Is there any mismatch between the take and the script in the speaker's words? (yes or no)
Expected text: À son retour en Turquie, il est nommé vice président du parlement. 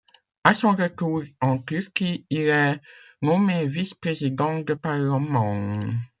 no